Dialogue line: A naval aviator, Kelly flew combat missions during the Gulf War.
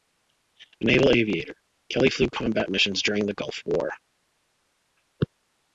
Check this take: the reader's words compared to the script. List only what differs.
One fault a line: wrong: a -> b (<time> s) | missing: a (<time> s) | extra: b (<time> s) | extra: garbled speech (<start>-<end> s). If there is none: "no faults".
no faults